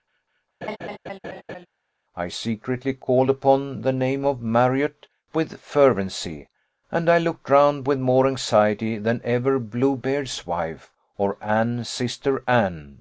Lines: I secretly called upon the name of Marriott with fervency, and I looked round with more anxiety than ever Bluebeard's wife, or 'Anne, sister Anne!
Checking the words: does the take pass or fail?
pass